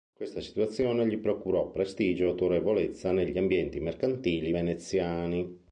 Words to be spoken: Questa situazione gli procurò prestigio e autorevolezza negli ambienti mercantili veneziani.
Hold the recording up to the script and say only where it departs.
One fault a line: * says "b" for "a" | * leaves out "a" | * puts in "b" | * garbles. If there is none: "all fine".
all fine